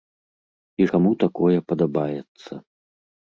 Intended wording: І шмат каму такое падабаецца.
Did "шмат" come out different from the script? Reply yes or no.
yes